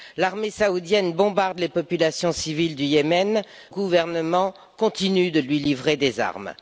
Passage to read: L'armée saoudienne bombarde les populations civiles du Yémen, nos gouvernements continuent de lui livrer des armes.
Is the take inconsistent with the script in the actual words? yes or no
yes